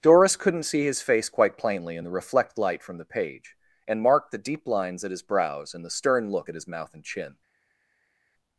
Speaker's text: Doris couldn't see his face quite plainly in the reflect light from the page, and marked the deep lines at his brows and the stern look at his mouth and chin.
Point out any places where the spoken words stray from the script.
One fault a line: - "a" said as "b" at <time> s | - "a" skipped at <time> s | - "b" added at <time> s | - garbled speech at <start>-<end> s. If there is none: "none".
none